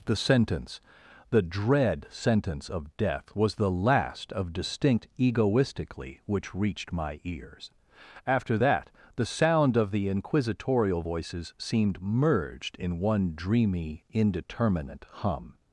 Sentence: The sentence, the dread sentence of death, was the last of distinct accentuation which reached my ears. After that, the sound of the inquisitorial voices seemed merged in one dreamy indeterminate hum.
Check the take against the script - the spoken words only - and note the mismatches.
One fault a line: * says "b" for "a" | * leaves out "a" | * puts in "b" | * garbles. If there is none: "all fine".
* says "egoistically" for "accentuation"